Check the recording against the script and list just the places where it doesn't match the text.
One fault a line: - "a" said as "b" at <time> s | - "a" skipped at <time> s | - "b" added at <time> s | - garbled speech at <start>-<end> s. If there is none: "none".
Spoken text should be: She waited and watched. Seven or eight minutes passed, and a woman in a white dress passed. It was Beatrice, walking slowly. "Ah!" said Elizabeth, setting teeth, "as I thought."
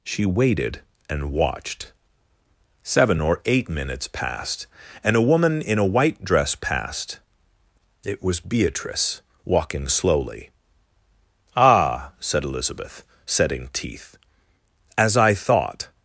none